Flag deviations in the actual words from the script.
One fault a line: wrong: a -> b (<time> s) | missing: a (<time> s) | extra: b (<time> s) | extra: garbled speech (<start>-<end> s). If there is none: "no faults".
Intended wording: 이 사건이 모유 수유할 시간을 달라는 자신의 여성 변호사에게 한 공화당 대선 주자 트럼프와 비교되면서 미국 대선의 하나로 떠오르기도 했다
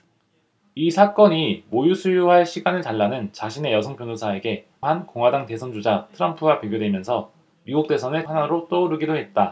no faults